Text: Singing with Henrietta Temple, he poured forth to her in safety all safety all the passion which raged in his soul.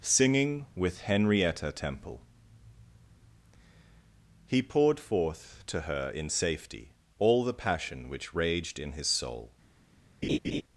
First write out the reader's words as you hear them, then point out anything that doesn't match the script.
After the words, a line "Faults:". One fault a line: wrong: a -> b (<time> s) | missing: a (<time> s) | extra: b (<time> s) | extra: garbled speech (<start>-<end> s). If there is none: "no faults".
Singing with Henrietta Temple, he poured forth to her in safety all the passion which raged in his soul.
Faults:
missing: safety all (7.4 s)